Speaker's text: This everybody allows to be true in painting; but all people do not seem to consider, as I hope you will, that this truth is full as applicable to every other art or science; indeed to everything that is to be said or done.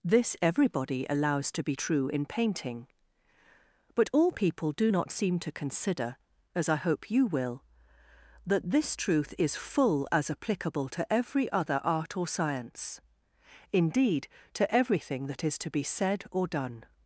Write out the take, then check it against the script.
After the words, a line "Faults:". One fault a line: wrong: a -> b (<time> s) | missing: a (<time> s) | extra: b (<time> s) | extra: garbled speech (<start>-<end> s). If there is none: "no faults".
This everybody allows to be true in painting; but all people do not seem to consider, as I hope you will, that this truth is full as applicable to every other art or science; indeed to everything that is to be said or done.
Faults:
no faults